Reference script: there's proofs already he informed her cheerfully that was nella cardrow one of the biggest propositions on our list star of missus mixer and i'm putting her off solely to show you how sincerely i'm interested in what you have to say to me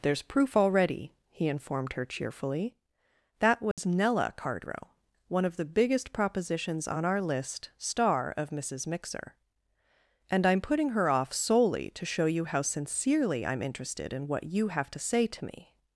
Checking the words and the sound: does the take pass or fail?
fail